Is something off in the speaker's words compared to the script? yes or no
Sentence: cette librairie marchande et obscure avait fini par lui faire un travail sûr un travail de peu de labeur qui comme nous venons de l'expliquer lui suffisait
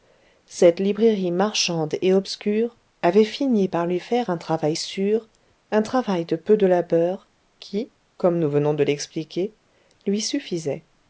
no